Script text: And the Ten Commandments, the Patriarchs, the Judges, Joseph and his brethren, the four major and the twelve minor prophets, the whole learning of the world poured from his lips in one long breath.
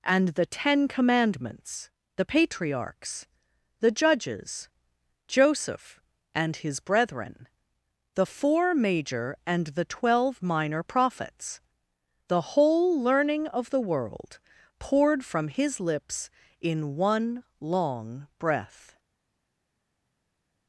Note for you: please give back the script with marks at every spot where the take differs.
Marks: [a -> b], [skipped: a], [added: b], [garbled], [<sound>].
And the Ten Commandments, the Patriarchs, the Judges, Joseph and his brethren, the four major and the twelve minor prophets, the whole learning of the world poured from his lips in one long breath.